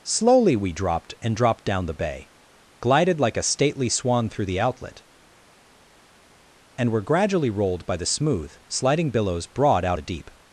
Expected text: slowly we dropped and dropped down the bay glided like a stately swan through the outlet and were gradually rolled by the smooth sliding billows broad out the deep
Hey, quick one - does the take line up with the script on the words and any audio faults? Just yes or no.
yes